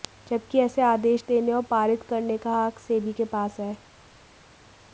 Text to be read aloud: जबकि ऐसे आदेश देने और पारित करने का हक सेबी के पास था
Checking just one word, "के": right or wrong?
right